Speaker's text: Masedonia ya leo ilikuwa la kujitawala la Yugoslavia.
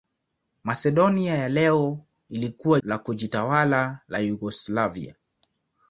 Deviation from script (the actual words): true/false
false